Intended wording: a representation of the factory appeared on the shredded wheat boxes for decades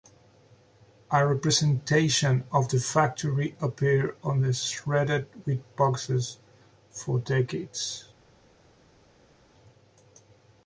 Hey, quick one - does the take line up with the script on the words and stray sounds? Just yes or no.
yes